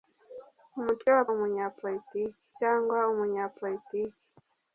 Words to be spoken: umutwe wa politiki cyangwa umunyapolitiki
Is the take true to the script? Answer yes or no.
no